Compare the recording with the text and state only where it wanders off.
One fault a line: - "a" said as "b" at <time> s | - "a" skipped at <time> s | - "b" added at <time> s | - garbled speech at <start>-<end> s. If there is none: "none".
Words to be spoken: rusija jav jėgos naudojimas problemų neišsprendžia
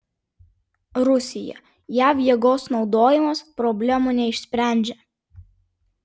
none